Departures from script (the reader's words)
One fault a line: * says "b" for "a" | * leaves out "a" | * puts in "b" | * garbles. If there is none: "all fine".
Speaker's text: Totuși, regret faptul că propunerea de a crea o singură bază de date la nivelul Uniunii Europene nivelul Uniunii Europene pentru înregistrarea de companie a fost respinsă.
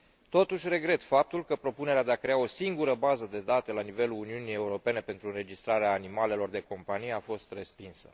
* leaves out "nivelul Uniunii Europene"
* puts in "animalelor"